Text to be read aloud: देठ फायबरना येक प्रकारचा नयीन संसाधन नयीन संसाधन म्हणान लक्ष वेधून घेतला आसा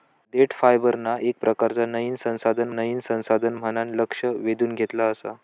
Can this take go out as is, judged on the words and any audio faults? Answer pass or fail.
pass